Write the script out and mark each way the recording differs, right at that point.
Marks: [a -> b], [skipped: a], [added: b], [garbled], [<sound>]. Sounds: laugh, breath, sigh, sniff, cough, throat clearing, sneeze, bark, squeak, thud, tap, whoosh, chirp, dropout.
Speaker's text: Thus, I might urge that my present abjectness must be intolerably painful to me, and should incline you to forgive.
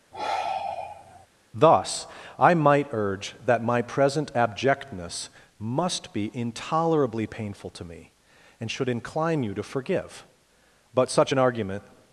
[sigh] Thus, I might urge that my present abjectness must be intolerably painful to me, and should incline you to forgive. [added: But such an argument]